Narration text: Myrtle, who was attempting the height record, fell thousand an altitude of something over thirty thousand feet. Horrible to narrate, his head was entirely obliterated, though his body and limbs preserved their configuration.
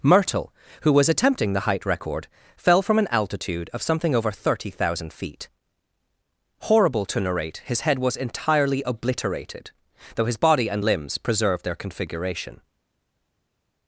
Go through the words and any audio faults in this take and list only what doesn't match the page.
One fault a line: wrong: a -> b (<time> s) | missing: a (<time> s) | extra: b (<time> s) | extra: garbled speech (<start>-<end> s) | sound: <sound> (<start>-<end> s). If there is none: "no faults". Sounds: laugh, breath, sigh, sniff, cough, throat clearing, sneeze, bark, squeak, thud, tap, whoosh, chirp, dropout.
wrong: thousand -> from (2.8 s)